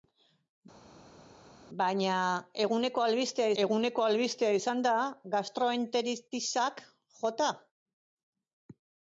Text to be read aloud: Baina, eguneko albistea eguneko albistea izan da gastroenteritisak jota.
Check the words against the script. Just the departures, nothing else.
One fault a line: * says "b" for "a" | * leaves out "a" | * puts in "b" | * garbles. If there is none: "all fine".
all fine